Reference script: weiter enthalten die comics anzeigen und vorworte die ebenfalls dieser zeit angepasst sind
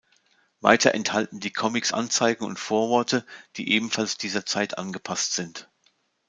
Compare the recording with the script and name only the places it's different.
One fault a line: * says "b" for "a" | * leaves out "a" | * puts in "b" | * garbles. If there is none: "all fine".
all fine